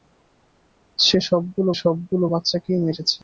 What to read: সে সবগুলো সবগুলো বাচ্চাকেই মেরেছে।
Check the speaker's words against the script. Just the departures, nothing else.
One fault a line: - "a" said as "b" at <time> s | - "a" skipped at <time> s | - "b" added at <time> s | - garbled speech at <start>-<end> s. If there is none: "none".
none